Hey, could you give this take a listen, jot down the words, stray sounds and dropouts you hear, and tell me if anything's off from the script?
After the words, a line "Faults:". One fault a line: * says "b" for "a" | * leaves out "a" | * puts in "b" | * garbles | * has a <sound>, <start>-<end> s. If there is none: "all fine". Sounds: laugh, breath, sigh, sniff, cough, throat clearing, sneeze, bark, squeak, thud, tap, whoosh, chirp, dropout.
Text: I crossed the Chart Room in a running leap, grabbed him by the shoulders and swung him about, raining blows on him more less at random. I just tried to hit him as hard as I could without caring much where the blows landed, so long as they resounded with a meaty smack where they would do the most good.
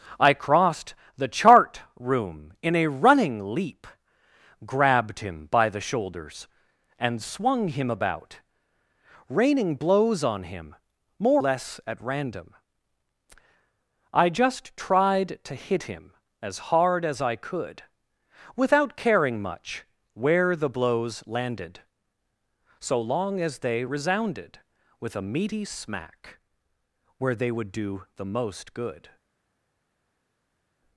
I crossed the Chart Room in a running leap, grabbed him by the shoulders and swung him about, raining blows on him more less at random. I just tried to hit him as hard as I could without caring much where the blows landed, so long as they resounded with a meaty smack where they would do the most good.
Faults:
all fine